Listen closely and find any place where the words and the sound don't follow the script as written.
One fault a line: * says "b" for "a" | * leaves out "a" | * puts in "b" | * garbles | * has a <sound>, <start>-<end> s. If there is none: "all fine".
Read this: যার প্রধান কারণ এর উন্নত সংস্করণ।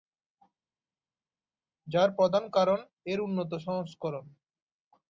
all fine